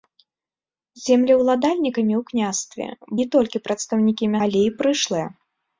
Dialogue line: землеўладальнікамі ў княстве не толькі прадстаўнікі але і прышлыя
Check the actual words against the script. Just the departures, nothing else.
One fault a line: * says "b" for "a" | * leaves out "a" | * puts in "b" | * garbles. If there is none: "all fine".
all fine